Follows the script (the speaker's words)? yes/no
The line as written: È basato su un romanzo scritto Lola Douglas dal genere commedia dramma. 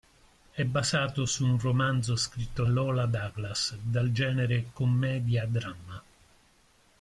yes